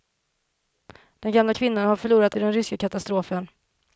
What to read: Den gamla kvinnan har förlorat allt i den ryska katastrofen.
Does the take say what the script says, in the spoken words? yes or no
no